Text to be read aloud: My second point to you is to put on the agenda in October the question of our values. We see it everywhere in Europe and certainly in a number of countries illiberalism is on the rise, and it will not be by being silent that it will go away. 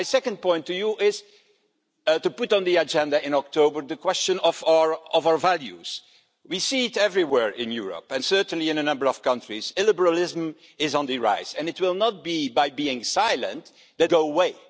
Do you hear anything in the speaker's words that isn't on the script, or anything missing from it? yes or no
yes